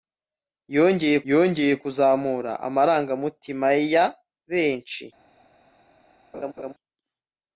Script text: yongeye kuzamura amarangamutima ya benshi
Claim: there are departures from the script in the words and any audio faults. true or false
true